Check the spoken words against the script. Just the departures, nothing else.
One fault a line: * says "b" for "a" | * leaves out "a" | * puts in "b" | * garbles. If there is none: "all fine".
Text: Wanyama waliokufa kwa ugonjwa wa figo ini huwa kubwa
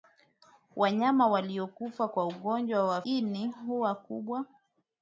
* leaves out "figo"